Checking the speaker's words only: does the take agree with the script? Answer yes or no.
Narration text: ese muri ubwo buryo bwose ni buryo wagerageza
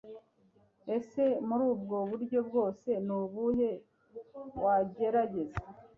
no